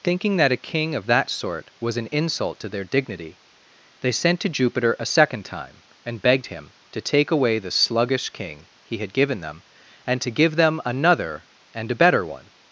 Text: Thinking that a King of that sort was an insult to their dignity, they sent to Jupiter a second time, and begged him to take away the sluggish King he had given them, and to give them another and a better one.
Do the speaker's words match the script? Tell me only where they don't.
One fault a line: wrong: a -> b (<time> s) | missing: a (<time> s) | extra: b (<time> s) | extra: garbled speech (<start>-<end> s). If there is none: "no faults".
no faults